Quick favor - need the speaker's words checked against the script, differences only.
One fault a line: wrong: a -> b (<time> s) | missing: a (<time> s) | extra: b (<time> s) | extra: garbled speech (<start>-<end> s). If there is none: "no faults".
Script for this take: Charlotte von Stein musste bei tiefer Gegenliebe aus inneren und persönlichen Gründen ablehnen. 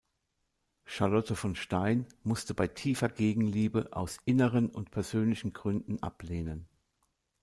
no faults